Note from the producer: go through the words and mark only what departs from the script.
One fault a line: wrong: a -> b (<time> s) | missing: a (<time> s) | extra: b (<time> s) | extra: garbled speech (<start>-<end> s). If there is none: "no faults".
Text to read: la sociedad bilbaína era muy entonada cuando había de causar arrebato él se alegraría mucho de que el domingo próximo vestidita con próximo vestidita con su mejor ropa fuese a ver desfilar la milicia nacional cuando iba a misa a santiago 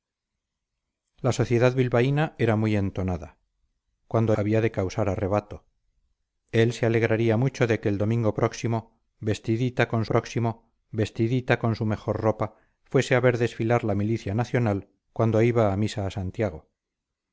no faults